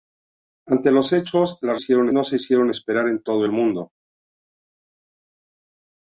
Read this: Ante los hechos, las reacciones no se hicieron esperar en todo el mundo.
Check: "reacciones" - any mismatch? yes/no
yes